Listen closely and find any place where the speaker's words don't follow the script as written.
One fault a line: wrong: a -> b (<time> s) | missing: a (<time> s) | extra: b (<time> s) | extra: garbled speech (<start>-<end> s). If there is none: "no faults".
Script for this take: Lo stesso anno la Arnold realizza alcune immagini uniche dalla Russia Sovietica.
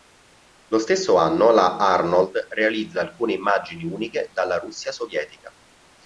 no faults